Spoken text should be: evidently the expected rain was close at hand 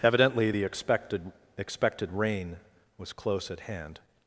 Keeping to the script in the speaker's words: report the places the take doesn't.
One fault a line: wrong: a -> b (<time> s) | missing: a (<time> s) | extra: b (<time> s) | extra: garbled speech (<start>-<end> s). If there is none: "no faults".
extra: expected (1.6 s)